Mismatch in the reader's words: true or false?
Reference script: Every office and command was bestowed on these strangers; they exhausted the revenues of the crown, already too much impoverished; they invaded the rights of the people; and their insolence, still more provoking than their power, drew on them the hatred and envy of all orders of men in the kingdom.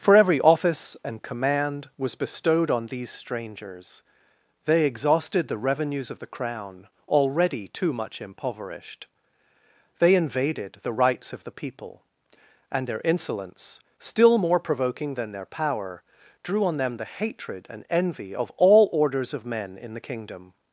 true